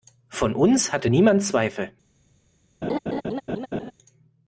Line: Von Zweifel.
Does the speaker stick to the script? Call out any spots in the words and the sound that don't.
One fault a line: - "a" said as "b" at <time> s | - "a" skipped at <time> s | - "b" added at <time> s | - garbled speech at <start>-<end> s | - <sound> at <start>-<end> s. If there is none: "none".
- "uns hatte niemand" added at 0.6 s
- laugh at 2.8-3.9 s